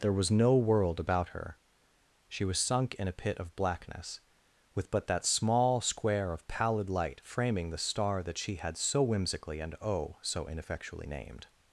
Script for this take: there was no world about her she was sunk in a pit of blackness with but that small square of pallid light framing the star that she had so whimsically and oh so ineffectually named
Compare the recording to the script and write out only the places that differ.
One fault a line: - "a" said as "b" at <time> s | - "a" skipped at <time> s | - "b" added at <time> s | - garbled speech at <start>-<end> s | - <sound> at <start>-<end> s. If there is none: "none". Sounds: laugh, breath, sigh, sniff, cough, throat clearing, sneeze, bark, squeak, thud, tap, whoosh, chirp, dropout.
none